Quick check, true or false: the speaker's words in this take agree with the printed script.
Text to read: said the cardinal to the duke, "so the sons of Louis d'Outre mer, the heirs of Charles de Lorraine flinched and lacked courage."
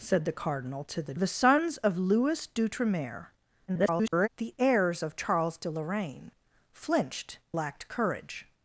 false